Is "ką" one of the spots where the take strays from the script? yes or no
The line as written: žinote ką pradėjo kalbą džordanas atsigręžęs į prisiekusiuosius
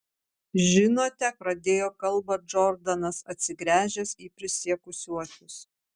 yes